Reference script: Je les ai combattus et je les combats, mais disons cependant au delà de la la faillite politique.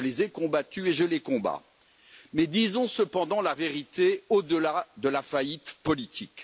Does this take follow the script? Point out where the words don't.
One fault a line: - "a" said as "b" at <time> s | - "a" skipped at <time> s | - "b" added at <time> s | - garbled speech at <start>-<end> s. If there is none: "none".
- "la vérité" added at 3.4 s
- "la" skipped at 5.2 s